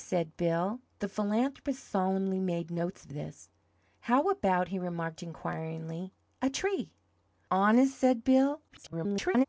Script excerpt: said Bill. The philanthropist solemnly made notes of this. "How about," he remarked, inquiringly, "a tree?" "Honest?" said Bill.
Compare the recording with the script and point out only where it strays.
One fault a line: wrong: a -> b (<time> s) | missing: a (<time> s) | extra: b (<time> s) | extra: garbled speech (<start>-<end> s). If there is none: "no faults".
extra: garbled speech (8.7-9.5 s)